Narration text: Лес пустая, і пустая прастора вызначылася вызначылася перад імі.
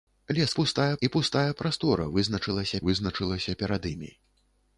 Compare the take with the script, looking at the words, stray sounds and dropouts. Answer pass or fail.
pass